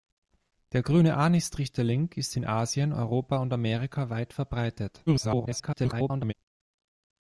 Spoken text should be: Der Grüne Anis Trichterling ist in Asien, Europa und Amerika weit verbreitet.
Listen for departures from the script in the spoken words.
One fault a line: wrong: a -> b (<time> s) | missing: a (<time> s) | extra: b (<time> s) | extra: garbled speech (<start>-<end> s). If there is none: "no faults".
extra: garbled speech (5.1-6.3 s)